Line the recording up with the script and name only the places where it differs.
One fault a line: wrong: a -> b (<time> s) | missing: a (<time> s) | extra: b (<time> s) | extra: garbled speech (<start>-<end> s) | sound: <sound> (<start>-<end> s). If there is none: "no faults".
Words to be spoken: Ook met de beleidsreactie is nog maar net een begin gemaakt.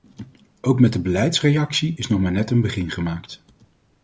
no faults